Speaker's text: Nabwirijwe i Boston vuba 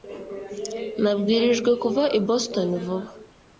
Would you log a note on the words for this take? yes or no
yes